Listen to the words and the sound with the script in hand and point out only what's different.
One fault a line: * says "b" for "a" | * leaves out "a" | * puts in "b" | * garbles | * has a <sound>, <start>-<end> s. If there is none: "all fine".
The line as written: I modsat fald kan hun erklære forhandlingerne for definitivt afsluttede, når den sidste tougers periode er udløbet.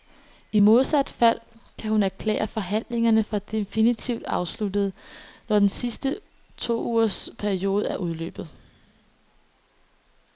all fine